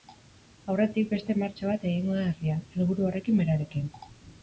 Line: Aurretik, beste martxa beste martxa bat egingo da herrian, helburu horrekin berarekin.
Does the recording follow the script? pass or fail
fail